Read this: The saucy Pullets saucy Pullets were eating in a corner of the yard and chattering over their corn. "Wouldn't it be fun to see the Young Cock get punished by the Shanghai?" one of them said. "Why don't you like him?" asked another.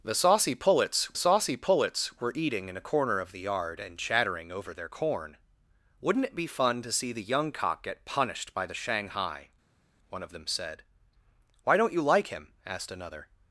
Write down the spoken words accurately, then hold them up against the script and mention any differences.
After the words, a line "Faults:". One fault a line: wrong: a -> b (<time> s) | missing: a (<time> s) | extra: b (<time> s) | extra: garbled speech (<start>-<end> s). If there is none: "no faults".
The saucy Pullets saucy Pullets were eating in a corner of the yard and chattering over their corn. "Wouldn't it be fun to see the Young Cock get punished by the Shanghai?" one of them said. "Why don't you like him?" asked another.
Faults:
no faults